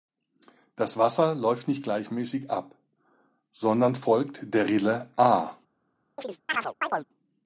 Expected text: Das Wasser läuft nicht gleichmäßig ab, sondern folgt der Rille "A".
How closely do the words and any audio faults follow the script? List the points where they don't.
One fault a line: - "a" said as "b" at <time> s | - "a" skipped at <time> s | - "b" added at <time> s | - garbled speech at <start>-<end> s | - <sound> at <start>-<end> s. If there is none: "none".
- chirp at 6.2-7.1 s